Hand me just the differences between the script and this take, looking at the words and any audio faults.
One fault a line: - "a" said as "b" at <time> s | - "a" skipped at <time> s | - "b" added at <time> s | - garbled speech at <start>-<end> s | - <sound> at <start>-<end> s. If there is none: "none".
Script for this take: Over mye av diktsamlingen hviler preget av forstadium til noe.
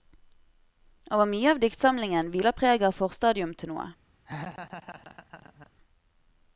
- laugh at 4.3-5.7 s